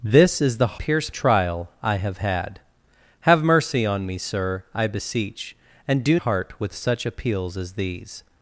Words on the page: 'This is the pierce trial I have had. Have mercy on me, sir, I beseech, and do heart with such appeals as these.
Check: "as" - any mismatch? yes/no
no